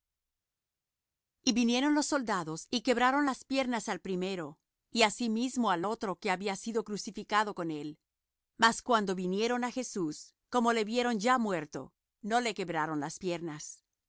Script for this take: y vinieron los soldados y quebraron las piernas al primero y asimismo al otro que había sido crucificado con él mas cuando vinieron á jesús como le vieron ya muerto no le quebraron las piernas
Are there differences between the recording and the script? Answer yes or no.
no